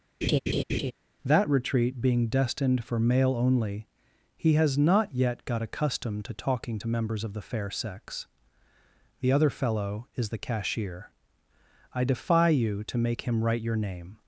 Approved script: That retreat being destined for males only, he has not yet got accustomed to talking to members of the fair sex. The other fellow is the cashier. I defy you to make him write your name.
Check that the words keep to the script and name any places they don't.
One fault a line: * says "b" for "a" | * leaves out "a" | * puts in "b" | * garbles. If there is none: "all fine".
* says "male" for "males"